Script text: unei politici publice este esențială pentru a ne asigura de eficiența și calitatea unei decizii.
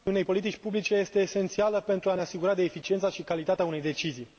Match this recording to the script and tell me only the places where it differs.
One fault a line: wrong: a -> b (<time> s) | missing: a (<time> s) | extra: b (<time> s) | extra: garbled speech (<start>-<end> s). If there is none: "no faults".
no faults